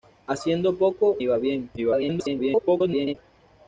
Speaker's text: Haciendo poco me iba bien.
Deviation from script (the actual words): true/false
true